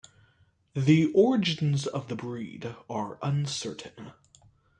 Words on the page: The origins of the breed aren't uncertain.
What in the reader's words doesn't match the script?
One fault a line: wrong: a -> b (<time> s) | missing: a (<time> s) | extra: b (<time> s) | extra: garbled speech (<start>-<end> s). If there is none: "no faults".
wrong: aren't -> are (2.9 s)